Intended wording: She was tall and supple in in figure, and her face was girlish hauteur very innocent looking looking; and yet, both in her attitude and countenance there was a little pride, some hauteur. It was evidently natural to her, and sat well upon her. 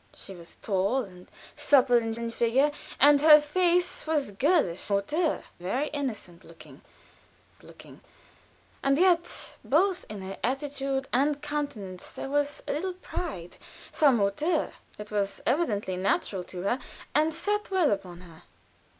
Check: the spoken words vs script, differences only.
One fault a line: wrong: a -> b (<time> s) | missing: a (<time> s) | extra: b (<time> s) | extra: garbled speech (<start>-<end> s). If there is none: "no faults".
no faults